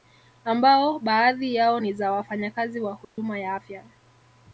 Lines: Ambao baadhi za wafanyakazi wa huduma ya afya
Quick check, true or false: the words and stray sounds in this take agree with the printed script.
false